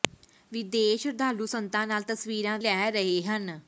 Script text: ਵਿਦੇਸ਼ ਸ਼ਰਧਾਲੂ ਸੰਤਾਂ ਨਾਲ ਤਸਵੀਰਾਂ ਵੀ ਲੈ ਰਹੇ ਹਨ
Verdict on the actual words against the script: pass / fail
fail